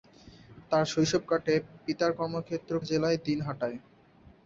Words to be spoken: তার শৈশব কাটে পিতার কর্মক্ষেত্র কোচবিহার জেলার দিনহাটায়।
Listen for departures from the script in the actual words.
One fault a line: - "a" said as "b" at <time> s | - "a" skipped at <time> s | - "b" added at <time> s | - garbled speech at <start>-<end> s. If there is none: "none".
- "কোচবিহার" skipped at 2.7 s